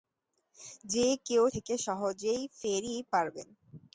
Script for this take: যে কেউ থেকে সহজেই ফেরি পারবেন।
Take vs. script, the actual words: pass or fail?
pass